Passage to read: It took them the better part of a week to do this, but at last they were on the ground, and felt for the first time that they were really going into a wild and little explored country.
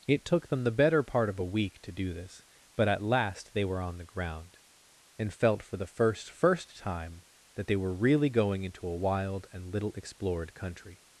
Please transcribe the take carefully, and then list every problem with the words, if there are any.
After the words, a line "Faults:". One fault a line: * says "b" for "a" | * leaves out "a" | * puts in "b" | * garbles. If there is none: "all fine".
It took them the better part of a week to do this, but at last they were on the ground, and felt for the first first time that they were really going into a wild and little explored country.
Faults:
* puts in "first"